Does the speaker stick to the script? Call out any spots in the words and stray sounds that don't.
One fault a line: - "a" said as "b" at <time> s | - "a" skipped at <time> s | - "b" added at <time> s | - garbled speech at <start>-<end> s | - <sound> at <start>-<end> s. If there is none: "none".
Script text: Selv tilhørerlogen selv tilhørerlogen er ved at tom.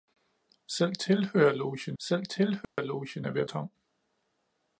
- dropout at 2.6-2.8 s